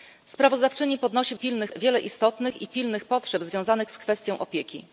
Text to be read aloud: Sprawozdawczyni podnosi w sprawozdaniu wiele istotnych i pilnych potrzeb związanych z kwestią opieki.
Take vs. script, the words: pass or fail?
fail